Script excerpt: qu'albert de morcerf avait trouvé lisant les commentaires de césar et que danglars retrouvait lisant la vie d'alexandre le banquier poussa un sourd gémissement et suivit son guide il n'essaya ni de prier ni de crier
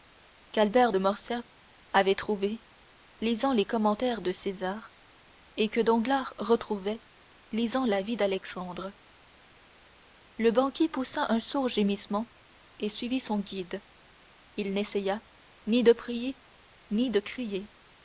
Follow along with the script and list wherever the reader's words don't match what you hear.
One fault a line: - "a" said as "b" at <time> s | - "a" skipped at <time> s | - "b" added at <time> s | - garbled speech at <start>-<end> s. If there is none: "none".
none